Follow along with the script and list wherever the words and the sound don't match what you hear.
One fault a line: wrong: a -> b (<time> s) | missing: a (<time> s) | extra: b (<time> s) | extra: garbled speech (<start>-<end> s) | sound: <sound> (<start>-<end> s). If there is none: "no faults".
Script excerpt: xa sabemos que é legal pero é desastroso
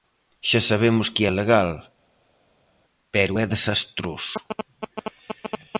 no faults